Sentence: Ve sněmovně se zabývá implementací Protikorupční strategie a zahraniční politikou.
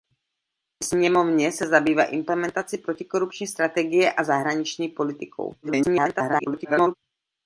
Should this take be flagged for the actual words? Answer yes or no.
yes